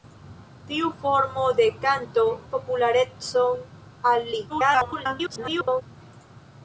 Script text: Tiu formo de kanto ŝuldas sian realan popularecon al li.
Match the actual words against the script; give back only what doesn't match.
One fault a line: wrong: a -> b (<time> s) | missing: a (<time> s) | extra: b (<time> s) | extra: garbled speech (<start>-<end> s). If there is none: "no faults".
missing: ŝuldas sian realan (2.2 s)
extra: garbled speech (4.5-5.8 s)